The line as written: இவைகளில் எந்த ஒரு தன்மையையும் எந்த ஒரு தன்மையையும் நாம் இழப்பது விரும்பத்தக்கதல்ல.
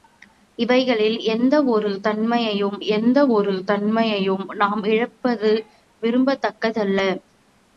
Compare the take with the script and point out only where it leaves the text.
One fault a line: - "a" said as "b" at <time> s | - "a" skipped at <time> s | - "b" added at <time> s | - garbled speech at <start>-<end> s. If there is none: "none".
none